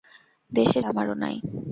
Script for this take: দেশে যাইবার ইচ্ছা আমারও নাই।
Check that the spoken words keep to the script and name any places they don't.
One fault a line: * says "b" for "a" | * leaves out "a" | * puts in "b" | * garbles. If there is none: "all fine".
* leaves out "যাইবার ইচ্ছা"